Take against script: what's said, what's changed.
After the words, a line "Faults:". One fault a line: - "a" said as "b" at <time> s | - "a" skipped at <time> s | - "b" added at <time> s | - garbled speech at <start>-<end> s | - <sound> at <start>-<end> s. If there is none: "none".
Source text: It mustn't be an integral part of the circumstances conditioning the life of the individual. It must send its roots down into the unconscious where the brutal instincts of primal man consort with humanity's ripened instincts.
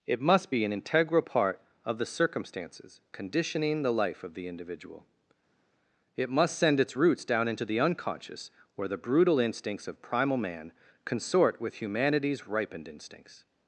It must be an integral part of the circumstances conditioning the life of the individual. It must send its roots down into the unconscious where the brutal instincts of primal man consort with humanity's ripened instincts.
Faults:
- "mustn't" said as "must" at 0.2 s